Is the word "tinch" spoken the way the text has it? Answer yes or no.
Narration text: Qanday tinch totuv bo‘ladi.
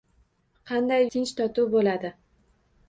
yes